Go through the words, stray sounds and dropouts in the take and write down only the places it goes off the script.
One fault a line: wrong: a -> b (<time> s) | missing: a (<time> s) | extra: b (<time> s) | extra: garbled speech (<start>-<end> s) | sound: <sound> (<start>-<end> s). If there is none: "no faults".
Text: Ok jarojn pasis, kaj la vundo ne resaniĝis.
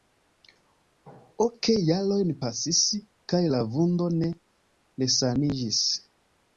no faults